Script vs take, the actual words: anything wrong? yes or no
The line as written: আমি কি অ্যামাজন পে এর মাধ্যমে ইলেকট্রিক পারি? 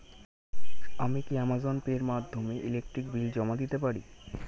yes